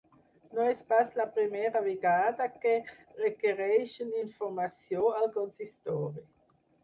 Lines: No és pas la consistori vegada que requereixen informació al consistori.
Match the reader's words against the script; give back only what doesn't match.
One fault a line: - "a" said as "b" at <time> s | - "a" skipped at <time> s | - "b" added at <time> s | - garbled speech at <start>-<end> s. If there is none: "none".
- "consistori" said as "primera" at 1.4 s